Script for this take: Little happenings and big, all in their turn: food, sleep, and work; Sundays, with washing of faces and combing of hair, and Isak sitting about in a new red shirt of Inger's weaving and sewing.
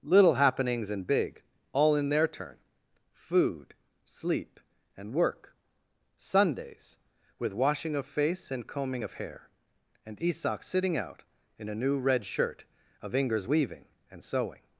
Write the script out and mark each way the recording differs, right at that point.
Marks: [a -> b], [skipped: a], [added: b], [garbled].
Little happenings and big, all in their turn: food, sleep, and work; Sundays, with washing of [faces -> face] and combing of hair, and Isak sitting [about -> out] in a new red shirt of Inger's weaving and sewing.